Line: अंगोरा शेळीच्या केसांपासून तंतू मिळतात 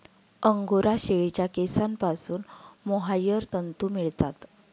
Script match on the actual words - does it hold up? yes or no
no